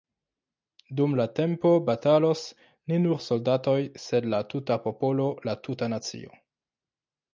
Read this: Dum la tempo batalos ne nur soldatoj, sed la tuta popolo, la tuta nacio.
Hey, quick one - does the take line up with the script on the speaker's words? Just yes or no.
yes